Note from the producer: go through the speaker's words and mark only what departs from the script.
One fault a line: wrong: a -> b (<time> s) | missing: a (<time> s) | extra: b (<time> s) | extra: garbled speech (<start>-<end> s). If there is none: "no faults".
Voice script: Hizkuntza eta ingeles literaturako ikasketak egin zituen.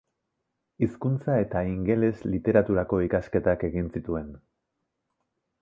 no faults